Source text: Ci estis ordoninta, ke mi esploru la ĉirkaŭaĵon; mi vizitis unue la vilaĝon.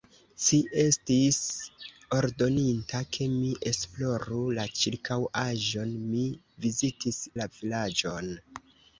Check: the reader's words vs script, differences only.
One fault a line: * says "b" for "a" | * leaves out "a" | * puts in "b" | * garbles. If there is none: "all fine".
* leaves out "unue"